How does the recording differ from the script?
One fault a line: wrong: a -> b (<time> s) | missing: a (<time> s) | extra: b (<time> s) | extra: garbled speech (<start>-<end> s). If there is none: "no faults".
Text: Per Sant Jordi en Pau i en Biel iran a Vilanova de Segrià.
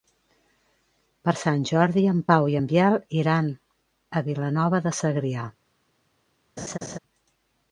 no faults